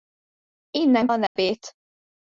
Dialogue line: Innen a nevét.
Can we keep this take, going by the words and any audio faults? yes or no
no